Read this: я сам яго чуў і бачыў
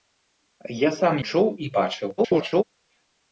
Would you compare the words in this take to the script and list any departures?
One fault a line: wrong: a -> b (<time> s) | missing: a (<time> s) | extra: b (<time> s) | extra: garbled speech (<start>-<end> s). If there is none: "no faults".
missing: яго (1.2 s)
extra: garbled speech (2.2-2.6 s)